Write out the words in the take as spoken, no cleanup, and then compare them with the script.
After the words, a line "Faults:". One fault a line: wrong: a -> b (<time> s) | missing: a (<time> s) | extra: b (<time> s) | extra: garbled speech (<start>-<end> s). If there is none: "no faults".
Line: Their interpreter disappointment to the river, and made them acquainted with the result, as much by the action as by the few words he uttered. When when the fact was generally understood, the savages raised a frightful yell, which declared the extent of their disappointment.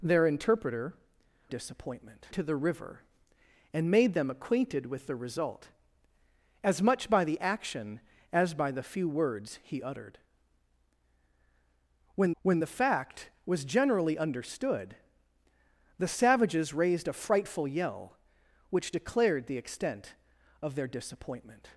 Their interpreter disappointment to the river, and made them acquainted with the result, as much by the action as by the few words he uttered. When when the fact was generally understood, the savages raised a frightful yell, which declared the extent of their disappointment.
Faults:
no faults